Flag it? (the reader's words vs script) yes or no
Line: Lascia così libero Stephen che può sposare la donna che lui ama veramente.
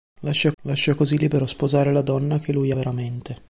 yes